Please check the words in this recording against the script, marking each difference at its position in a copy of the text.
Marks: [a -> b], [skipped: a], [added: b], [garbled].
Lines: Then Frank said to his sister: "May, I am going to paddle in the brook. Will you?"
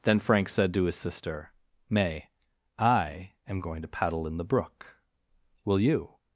Then Frank said to his sister: "May, I am going to paddle in the brook. Will you?"